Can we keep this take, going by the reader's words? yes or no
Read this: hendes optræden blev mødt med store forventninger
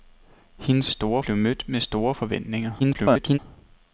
no